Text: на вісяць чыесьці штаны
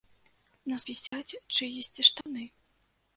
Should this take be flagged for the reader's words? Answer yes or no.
no